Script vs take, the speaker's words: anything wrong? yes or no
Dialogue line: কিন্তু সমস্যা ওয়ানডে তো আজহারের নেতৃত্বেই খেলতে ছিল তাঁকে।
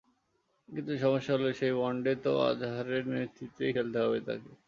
yes